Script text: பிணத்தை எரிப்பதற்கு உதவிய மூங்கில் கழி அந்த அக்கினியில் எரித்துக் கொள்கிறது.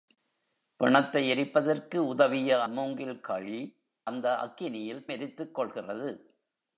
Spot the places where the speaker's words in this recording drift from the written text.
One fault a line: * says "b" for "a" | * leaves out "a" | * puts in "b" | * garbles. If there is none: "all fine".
all fine